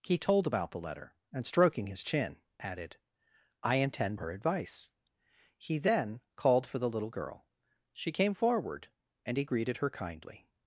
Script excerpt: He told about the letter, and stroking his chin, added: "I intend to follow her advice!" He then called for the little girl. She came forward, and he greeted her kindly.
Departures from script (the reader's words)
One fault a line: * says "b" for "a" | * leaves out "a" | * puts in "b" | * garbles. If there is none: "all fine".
* leaves out "to follow"